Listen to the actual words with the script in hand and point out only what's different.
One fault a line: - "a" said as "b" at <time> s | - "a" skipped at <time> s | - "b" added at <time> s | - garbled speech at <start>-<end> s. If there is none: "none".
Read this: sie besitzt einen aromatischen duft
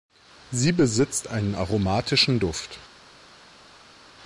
none